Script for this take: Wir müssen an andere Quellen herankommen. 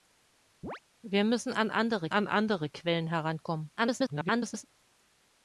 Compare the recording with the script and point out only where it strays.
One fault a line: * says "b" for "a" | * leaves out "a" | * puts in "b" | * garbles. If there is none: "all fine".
* puts in "an andere"
* garbles